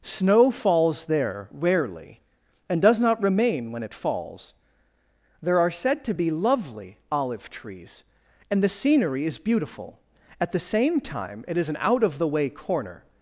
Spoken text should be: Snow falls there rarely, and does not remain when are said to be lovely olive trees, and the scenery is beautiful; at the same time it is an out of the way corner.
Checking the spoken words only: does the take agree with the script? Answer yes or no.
no